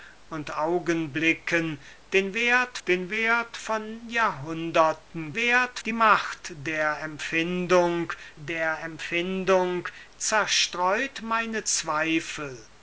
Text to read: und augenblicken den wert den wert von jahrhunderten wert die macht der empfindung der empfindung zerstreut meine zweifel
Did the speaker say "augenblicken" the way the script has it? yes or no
yes